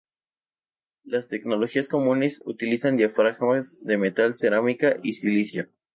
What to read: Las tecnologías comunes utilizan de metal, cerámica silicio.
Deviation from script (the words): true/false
true